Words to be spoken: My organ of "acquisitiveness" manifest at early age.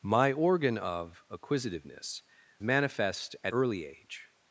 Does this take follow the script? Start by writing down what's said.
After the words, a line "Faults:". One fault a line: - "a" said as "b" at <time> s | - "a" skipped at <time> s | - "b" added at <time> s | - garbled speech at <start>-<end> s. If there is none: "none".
My organ of "acquisitiveness" manifest at early age.
Faults:
none